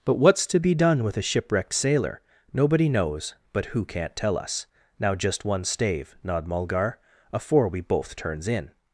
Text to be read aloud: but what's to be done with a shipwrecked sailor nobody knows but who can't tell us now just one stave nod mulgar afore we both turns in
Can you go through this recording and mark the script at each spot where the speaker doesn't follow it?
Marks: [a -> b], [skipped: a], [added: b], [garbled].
but what's to be done with a shipwrecked sailor nobody knows but who can't tell us now just one stave nod mulgar afore we both turns in